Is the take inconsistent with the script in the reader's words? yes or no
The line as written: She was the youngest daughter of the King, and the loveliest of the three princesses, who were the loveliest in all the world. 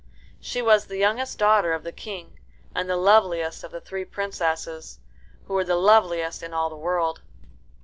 no